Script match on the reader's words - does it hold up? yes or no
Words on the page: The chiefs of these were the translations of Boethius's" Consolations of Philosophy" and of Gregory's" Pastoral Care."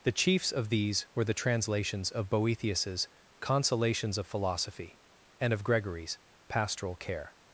yes